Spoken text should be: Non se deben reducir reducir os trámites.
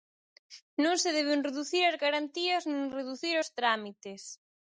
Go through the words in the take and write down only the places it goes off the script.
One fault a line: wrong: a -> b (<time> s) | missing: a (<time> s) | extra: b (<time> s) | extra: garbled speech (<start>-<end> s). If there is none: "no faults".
extra: as garantías nin (1.9 s)